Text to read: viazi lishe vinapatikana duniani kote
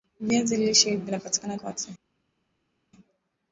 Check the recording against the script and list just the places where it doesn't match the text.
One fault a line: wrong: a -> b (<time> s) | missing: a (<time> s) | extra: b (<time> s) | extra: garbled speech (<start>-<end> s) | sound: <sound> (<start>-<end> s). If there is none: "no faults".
missing: duniani (1.6 s)